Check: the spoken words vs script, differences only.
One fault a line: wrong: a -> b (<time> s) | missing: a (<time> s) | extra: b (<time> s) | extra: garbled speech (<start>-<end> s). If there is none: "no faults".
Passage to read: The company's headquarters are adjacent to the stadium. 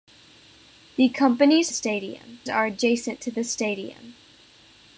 wrong: headquarters -> stadium (1.7 s)